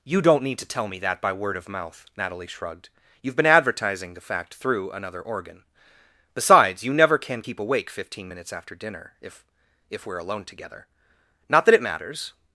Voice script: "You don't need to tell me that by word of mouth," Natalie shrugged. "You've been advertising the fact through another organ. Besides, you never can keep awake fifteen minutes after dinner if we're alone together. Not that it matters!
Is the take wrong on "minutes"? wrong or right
right